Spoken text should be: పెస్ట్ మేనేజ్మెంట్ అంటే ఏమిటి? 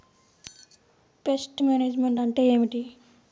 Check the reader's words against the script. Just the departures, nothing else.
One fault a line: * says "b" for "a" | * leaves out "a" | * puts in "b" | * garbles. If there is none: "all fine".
all fine